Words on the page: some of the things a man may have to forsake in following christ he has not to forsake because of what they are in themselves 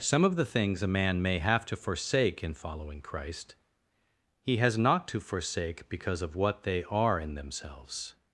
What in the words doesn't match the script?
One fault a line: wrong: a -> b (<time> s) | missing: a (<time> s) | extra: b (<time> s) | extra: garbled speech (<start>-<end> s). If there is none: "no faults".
no faults